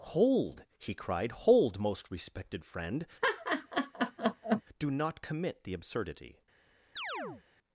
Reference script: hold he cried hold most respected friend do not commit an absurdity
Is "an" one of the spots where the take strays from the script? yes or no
yes